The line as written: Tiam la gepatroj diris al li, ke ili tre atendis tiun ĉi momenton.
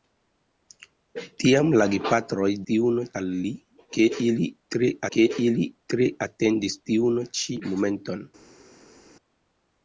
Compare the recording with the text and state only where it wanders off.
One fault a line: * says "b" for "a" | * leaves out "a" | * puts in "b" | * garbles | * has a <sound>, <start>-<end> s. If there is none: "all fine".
* says "tiun" for "diris"
* puts in "ke ili tre"